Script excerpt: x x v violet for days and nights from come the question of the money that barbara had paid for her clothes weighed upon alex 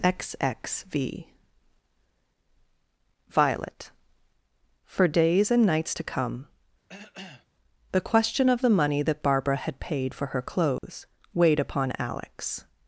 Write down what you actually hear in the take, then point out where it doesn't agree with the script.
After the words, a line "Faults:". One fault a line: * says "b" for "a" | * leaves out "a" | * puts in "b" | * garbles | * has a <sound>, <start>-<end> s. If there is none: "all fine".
x x v violet for days and nights to come the question of the money that barbara had paid for her clothes weighed upon alex
Faults:
* says "to" for "from"
* has a cough, 6.9-7.5 s
* has a dropout, 10.8-10.8 s